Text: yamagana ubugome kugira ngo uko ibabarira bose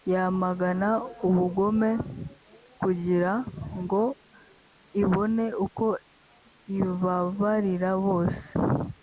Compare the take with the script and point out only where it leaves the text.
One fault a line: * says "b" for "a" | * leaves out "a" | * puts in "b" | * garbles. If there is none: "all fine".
* puts in "ibone"